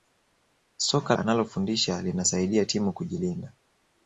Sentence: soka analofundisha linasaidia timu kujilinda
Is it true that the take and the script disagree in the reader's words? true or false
false